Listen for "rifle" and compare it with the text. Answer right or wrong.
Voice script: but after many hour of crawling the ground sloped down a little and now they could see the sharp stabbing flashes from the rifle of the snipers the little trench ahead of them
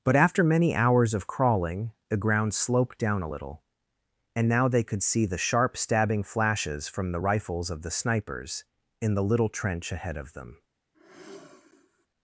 wrong